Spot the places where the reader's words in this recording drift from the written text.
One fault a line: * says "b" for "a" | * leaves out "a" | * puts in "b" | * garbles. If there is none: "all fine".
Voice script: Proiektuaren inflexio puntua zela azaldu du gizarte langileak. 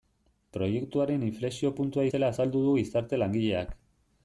all fine